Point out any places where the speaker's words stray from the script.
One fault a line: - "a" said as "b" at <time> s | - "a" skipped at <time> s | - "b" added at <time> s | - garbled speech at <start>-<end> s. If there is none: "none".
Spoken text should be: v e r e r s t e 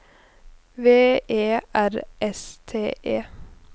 - "e r" skipped at 1.9 s